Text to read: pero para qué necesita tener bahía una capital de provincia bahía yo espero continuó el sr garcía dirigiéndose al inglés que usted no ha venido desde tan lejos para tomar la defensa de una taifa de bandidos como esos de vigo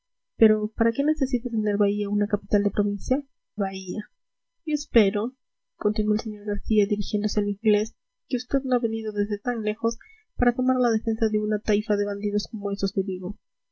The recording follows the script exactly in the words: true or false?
true